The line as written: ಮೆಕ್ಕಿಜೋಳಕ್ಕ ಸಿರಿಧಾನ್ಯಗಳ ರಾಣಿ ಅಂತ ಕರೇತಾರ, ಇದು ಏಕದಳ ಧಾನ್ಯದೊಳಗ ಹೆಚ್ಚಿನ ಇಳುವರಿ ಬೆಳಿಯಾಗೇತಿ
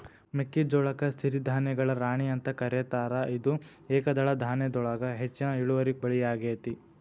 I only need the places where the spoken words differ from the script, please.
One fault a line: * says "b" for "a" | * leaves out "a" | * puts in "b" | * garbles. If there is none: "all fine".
all fine